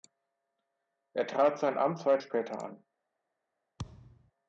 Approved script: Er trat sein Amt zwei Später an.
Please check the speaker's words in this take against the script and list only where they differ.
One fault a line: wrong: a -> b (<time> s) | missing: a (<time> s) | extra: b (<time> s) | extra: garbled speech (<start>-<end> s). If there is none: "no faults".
no faults